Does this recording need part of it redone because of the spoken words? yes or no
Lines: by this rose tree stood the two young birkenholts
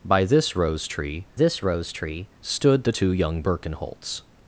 yes